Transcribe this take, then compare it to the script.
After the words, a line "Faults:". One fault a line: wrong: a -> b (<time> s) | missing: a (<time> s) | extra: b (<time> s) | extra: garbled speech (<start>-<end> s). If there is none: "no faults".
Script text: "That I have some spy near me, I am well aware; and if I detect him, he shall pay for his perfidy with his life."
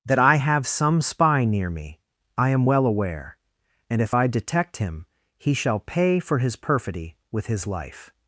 "That I have some spy near me, I am well aware; and if I detect him, he shall pay for his perfidy with his life."
Faults:
no faults